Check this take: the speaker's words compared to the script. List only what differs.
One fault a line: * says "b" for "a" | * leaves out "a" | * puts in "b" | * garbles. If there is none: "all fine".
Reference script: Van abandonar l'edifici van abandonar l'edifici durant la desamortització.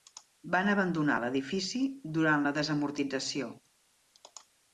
* leaves out "van abandonar l'edifici"